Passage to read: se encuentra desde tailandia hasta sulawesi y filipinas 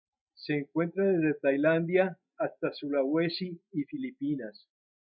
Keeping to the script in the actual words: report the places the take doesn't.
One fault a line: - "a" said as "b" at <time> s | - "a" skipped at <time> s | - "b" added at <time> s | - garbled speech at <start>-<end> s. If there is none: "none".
none